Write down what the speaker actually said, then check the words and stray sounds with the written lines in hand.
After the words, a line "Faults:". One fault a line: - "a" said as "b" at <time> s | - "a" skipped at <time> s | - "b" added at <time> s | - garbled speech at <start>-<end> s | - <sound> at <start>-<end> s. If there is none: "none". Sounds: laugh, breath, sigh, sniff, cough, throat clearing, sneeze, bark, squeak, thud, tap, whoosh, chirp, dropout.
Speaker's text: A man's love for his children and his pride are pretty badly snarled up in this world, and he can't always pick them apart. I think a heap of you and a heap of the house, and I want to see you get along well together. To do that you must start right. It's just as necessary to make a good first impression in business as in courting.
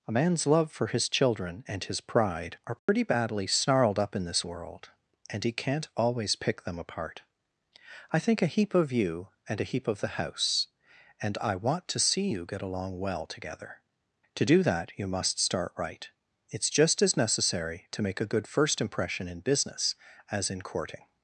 A man's love for his children and his pride are pretty badly snarled up in this world, and he can't always pick them apart. I think a heap of you and a heap of the house, and I want to see you get along well together. To do that you must start right. It's just as necessary to make a good first impression in business as in courting.
Faults:
- dropout at 2.8-2.9 s